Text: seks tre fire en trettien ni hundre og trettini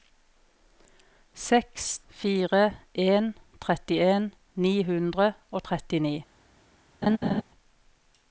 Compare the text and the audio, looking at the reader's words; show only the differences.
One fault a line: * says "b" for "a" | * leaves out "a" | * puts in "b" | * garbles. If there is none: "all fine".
* leaves out "tre"